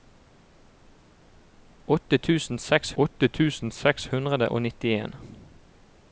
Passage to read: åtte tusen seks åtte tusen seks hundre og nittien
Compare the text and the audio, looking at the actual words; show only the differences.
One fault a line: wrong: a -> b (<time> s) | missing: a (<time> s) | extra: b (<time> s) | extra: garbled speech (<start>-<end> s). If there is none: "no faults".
no faults